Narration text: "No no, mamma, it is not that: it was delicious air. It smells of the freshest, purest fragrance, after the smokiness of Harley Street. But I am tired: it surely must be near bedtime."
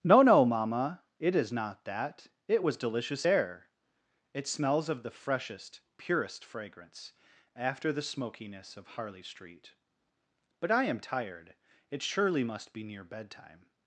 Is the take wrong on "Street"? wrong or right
right